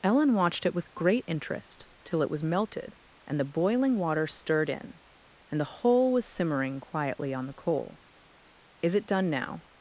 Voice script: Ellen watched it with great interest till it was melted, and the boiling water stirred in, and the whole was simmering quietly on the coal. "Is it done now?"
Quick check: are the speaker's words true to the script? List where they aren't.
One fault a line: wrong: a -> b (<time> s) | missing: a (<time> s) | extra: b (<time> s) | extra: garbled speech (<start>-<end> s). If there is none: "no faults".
no faults